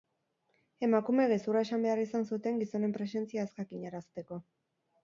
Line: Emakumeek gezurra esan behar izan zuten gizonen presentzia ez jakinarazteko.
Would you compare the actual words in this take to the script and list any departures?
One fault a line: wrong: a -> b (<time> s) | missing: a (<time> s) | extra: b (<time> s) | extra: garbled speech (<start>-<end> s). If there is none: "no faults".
no faults